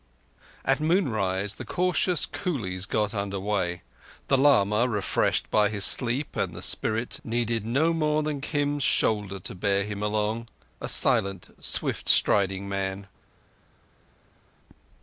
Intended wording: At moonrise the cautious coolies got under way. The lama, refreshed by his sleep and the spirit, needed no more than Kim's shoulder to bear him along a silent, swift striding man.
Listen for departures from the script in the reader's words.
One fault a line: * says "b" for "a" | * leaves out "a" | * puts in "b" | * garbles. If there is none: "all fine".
all fine